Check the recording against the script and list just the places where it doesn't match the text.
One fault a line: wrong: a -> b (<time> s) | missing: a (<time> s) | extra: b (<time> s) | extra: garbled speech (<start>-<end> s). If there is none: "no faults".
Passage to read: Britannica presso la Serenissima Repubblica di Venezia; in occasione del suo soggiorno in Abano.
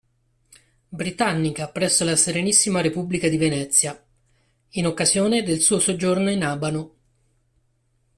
no faults